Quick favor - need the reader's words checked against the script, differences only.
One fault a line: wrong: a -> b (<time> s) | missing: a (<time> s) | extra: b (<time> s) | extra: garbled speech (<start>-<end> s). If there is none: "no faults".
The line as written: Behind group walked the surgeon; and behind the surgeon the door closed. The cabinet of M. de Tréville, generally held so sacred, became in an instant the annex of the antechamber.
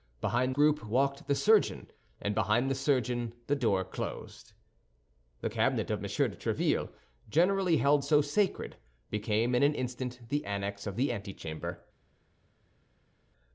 no faults